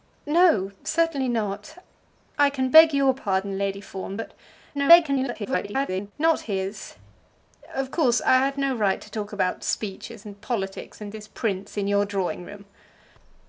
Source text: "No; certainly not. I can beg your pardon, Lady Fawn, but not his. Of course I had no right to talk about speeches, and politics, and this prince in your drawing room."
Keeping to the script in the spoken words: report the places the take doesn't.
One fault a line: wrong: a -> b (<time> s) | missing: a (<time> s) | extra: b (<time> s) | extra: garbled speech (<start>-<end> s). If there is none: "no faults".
extra: garbled speech (4.7-6.1 s)